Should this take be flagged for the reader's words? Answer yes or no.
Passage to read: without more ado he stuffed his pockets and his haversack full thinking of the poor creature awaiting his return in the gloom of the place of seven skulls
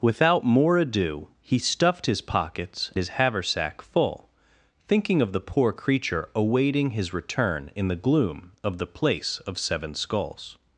yes